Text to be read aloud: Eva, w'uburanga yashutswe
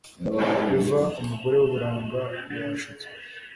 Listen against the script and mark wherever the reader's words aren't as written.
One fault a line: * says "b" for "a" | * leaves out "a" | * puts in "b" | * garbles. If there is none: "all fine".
* puts in "umugore"